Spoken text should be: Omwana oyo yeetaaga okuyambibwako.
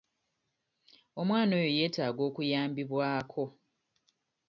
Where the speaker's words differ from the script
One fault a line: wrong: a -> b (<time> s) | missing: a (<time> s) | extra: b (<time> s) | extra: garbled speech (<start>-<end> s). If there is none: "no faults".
no faults